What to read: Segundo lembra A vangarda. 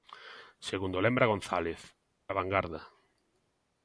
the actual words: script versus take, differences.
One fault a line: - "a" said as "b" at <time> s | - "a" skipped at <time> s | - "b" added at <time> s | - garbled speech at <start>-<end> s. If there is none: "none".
- "González" added at 1.3 s